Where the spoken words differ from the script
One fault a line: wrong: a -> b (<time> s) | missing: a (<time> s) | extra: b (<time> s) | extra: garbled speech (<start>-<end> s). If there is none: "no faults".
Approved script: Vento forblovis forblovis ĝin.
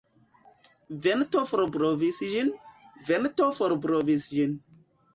extra: ĝin Vento (2.3 s)